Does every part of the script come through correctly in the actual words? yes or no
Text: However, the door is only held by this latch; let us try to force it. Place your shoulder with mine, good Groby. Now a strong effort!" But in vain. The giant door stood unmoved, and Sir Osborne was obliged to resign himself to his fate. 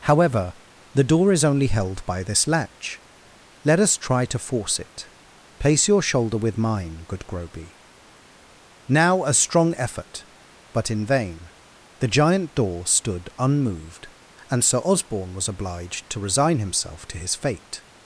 yes